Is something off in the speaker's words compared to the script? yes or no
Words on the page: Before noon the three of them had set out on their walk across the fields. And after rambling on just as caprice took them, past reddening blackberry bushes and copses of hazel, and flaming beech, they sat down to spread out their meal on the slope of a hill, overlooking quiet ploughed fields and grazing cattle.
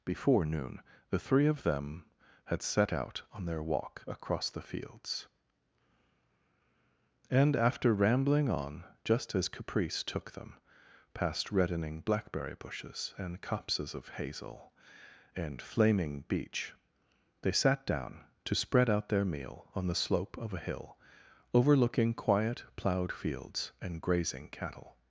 no